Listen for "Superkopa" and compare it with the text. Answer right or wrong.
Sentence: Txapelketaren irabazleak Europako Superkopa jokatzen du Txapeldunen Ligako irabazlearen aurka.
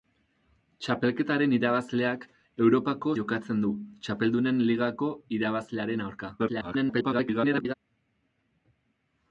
wrong